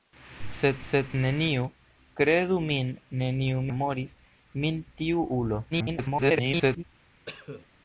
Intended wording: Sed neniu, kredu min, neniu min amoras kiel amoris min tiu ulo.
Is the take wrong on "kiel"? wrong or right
wrong